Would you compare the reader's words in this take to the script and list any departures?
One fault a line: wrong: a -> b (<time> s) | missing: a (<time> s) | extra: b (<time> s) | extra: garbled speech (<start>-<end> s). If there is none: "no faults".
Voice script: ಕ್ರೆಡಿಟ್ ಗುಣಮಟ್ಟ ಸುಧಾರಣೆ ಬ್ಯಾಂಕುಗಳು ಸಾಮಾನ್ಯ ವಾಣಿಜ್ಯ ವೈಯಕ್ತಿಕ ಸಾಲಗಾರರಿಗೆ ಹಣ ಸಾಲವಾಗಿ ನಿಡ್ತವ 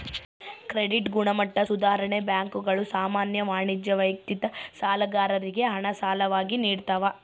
no faults